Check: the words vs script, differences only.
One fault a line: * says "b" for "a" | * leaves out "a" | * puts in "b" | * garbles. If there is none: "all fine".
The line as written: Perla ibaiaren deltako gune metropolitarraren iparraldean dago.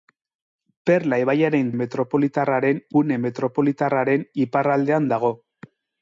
* says "metropolitarraren" for "deltako"